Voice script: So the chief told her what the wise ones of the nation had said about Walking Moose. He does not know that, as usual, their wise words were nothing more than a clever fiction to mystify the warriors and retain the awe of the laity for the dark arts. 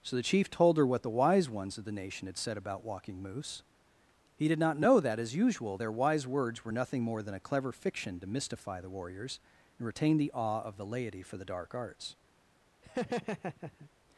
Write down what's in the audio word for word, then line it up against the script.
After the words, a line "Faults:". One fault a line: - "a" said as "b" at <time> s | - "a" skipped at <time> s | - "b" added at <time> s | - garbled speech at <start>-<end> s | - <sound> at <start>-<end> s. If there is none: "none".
So the chief told her what the wise ones of the nation had said about Walking Moose. He did not know that, as usual, their wise words were nothing more than a clever fiction to mystify the warriors and retain the awe of the laity for the dark arts.
Faults:
- "does" said as "did" at 4.5 s
- laugh at 12.8-13.9 s